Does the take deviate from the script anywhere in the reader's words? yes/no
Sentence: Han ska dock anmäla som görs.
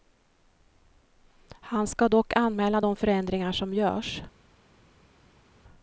yes